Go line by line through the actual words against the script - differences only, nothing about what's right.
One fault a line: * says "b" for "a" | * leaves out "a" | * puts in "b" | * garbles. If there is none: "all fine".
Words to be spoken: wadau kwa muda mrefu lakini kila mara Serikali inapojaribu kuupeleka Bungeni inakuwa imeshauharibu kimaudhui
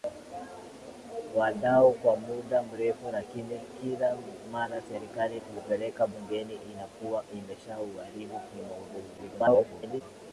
* leaves out "inapojaribu"
* garbles